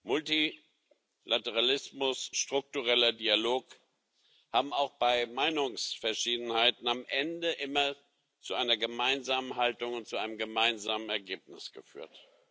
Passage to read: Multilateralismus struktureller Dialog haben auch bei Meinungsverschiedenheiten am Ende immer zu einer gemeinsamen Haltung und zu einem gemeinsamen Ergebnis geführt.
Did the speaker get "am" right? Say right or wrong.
right